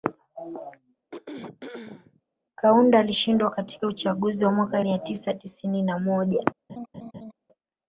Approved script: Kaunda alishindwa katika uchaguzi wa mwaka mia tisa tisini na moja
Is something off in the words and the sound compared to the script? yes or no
yes